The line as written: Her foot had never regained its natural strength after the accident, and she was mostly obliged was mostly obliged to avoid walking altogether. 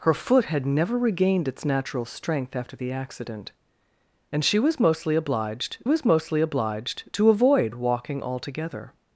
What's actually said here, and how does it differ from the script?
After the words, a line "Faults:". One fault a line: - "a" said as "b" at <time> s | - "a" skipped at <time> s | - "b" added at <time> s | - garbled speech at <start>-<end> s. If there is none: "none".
Her foot had never regained its natural strength after the accident, and she was mostly obliged was mostly obliged to avoid walking altogether.
Faults:
none